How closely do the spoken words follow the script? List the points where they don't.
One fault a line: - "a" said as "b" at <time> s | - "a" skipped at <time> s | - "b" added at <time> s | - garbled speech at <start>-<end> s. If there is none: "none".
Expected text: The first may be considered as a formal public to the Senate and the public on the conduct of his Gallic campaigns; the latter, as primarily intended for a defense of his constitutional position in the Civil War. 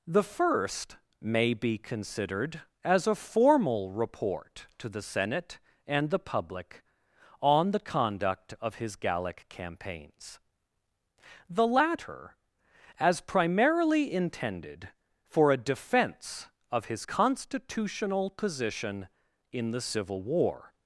- "public" said as "report" at 3.9 s